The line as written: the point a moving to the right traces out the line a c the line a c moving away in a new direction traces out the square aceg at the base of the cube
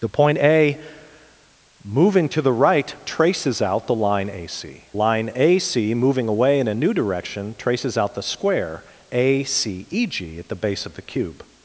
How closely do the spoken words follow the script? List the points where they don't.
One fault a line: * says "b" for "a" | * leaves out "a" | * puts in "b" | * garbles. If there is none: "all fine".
* leaves out "the"